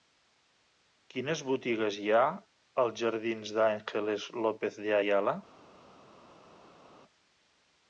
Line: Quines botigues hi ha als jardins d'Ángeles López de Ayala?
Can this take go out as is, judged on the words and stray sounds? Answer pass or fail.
pass